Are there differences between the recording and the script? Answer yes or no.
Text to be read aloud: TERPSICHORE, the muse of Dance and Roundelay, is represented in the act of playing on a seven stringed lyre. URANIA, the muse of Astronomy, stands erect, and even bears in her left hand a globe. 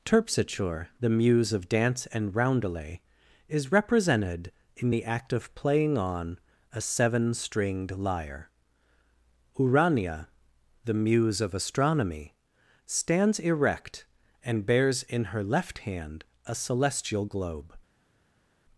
yes